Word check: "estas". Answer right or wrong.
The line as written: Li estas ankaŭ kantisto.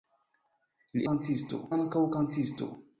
wrong